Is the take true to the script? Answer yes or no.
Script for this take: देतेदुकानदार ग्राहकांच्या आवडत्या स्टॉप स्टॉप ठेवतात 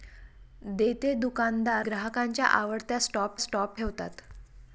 yes